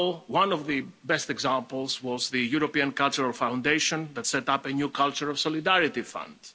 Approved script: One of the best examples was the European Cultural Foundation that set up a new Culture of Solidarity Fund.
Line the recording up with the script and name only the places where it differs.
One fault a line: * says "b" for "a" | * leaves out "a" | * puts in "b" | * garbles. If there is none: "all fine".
all fine